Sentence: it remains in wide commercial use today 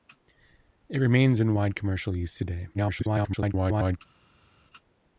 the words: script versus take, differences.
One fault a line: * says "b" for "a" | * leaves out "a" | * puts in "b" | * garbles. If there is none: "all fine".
* garbles